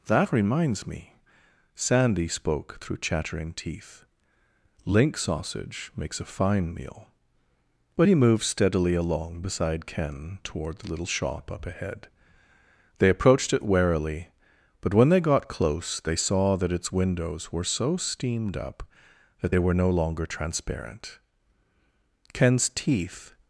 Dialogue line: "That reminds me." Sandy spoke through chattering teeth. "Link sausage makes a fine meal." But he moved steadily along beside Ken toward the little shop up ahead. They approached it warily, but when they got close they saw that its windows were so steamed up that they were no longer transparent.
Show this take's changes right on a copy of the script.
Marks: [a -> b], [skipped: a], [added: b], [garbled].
"That reminds me." Sandy spoke through chattering teeth. "Link sausage makes a fine meal." But he moved steadily along beside Ken toward the little shop up ahead. They approached it warily, but when they got close they saw that its windows were so steamed up that they were no longer transparent. [added: Ken's teeth]